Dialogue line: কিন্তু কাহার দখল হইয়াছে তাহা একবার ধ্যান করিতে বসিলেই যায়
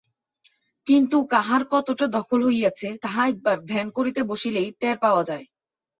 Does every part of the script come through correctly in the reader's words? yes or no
no